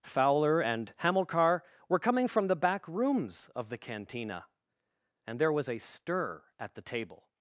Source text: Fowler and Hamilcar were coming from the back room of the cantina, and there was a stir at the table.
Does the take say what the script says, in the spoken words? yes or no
no